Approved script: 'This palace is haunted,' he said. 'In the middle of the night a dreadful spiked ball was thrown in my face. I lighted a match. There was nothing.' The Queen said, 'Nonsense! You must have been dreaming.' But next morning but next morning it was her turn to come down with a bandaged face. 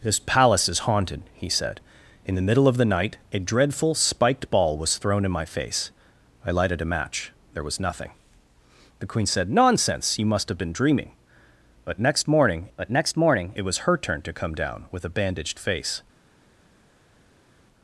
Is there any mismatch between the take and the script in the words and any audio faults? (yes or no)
no